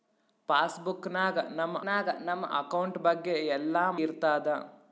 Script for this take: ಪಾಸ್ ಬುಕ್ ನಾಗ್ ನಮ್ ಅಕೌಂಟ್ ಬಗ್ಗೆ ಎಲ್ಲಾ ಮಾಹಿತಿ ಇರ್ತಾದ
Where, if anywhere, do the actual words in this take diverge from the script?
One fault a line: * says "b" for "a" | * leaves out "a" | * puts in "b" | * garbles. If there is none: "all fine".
* puts in "ನಾಗ್ ನಮ್"
* leaves out "ಮಾಹಿತಿ"